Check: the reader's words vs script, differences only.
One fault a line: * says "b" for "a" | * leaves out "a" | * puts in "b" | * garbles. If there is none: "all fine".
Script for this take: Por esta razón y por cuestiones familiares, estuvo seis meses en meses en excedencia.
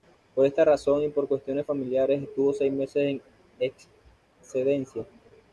* leaves out "meses en"